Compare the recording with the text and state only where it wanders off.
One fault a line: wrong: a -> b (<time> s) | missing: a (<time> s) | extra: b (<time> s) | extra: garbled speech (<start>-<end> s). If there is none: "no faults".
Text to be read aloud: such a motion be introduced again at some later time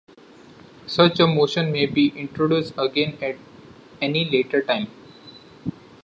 extra: may (1.7 s)
wrong: some -> any (4.0 s)